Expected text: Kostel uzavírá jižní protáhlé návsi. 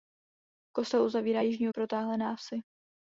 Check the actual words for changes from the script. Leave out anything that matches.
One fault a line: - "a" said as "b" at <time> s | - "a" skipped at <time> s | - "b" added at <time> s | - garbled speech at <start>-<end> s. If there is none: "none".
none